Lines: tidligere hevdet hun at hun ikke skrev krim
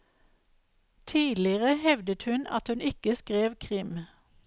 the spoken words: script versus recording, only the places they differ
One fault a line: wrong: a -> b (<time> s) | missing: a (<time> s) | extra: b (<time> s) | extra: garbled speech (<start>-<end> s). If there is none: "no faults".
no faults